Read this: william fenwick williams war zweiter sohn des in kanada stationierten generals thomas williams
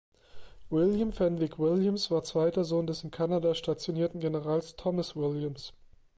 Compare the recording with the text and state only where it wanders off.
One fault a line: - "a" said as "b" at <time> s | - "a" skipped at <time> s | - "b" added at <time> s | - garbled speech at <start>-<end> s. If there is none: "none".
none